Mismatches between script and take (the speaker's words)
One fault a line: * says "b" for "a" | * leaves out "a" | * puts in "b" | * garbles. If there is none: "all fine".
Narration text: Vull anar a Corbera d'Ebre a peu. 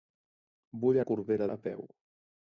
* leaves out "anar"
* leaves out "d'Ebre"